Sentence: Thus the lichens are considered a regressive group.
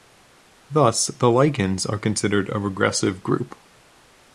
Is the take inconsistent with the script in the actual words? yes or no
no